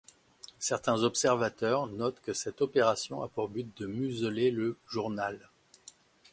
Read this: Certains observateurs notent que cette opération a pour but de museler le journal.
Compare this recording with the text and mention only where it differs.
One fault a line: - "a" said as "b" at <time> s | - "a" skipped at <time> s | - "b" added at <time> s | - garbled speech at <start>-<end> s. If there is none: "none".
none